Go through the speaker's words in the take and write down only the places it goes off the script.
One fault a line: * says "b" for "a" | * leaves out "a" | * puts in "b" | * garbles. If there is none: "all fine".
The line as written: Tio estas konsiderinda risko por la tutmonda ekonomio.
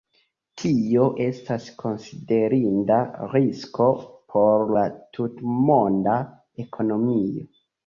all fine